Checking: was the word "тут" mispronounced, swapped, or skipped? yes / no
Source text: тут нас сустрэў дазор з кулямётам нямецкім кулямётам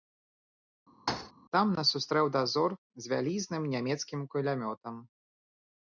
yes